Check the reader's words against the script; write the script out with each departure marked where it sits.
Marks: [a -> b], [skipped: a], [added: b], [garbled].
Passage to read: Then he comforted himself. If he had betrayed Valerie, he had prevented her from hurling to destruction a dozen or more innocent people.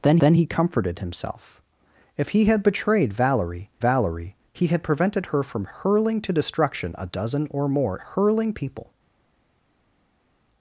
Then [added: then] he comforted himself. If he had betrayed Valerie, [added: Valerie] he had prevented her from hurling to destruction a dozen or more [innocent -> hurling] people.